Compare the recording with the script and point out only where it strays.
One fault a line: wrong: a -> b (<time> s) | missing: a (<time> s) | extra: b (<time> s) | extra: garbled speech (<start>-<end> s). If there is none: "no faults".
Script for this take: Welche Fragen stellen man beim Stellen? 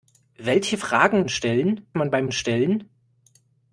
no faults